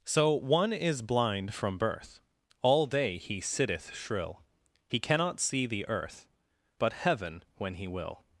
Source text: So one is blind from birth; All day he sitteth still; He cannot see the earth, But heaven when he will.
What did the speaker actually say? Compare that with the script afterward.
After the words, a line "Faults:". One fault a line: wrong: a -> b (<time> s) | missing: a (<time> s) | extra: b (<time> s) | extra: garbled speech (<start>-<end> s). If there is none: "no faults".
So one is blind from birth; All day he sitteth shrill; He cannot see the earth, But heaven when he will.
Faults:
wrong: still -> shrill (4.0 s)